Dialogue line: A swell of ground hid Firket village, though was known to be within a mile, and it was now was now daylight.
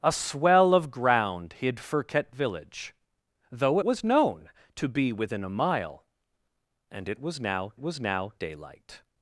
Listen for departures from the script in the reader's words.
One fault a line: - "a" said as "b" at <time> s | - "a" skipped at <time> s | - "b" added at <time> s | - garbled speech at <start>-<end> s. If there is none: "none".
none